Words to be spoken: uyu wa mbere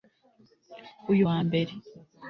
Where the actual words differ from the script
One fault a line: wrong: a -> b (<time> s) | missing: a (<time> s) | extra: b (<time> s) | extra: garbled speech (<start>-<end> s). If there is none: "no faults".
no faults